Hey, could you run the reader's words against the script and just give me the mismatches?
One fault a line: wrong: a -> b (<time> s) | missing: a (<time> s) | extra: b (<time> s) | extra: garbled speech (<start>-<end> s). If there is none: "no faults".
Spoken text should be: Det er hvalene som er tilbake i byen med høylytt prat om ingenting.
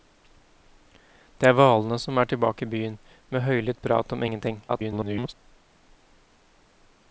extra: garbled speech (4.7-5.3 s)